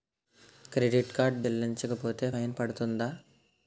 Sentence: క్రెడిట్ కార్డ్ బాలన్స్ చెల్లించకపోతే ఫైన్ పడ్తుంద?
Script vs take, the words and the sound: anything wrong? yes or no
yes